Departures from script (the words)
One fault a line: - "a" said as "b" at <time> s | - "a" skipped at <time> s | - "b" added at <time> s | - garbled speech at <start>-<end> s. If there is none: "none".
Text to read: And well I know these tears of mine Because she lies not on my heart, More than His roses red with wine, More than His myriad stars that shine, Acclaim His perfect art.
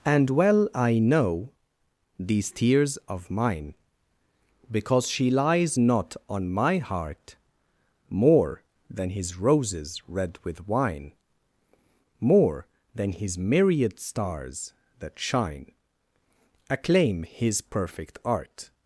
none